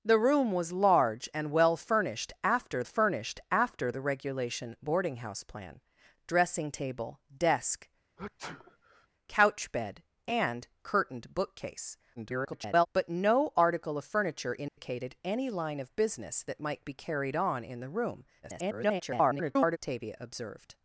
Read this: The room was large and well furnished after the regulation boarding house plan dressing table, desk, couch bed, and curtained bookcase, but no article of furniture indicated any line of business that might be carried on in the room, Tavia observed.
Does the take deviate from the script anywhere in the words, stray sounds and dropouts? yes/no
yes